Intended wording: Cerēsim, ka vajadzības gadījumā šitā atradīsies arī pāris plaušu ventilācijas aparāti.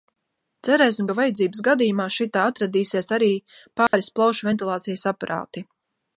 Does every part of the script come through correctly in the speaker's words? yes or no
yes